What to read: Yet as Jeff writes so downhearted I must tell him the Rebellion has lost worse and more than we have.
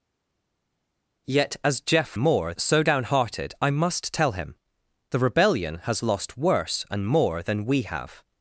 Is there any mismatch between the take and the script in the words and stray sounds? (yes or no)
yes